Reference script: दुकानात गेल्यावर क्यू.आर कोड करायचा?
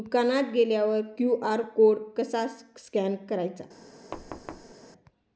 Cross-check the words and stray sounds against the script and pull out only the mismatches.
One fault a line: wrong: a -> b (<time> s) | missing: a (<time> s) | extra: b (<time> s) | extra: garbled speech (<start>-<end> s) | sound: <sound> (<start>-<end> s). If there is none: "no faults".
extra: कसा स्कॅन (2.2 s)
sound: thud (4.1-4.7 s)